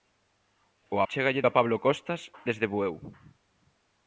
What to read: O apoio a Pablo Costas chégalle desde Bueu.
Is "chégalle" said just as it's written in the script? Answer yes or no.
no